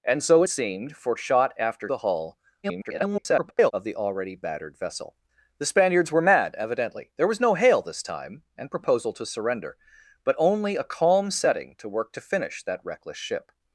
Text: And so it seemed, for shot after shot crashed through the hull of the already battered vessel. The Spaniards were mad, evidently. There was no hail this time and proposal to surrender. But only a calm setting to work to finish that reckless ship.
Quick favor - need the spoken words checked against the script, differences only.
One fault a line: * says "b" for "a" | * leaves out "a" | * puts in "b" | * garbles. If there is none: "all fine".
* leaves out "it"
* leaves out "shot crashed through"
* garbles